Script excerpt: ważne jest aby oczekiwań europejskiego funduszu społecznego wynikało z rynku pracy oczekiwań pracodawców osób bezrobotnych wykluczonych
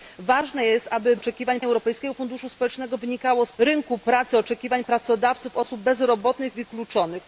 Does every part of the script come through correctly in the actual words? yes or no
yes